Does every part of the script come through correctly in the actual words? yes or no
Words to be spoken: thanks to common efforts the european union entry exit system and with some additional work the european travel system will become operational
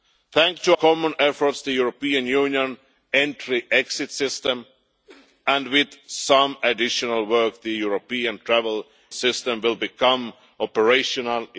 yes